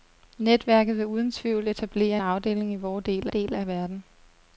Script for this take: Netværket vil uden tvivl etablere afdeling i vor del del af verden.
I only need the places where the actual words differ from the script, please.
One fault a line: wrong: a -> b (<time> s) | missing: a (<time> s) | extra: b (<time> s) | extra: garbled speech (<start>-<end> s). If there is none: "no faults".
no faults